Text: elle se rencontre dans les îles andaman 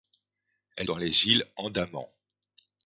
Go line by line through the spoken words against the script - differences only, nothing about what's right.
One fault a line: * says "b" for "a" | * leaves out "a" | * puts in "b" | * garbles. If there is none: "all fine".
* leaves out "se rencontre"